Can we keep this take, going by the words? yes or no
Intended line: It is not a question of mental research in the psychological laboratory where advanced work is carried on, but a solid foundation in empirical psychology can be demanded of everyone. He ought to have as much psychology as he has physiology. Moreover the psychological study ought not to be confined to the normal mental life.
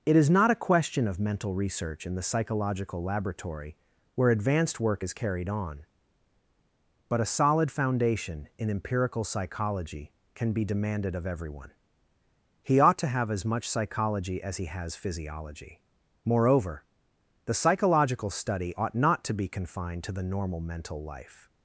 yes